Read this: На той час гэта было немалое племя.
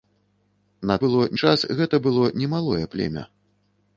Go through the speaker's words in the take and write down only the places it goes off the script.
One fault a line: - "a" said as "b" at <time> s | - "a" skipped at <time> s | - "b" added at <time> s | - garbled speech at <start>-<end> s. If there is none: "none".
- "той" said as "было" at 1.0 s